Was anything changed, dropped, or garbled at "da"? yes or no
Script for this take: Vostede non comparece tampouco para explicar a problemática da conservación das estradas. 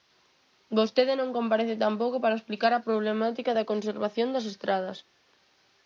no